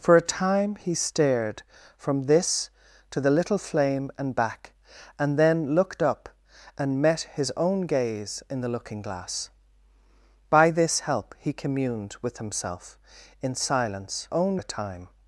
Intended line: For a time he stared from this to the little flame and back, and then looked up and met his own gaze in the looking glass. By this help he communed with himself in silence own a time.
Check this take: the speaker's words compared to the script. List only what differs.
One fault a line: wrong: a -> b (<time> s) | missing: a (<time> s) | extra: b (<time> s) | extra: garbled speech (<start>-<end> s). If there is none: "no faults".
no faults